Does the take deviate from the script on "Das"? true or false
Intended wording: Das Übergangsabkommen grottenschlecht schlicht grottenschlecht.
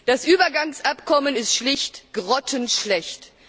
false